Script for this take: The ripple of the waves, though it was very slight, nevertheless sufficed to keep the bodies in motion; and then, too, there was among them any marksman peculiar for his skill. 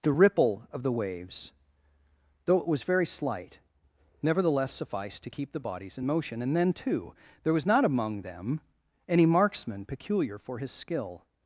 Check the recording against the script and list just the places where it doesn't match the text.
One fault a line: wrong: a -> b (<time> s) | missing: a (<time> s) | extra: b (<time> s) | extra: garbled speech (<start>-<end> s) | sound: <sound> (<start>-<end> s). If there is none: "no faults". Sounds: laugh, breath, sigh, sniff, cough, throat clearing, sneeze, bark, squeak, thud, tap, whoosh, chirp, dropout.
extra: not (7.6 s)